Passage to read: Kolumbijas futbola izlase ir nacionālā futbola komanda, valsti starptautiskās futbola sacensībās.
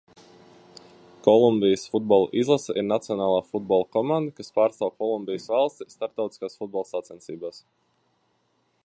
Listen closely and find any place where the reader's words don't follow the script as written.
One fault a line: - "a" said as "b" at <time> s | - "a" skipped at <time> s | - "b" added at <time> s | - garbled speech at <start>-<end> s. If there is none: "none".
- "kas pārstāv Kolumbijas" added at 4.4 s